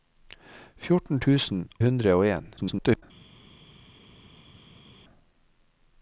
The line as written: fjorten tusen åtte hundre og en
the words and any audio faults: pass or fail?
fail